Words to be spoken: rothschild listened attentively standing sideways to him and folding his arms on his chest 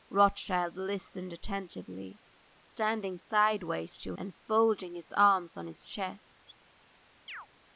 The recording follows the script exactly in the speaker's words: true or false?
false